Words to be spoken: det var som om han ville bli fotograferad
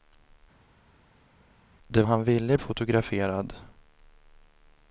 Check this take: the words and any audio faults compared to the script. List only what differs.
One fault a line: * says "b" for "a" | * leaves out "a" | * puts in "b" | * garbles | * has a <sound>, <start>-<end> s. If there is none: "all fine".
* leaves out "var som om"
* leaves out "bli"